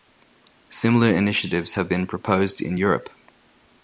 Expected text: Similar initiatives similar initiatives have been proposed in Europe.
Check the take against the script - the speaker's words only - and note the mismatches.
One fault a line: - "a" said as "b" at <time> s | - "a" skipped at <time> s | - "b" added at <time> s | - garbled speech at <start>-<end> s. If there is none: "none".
- "similar initiatives" skipped at 1.8 s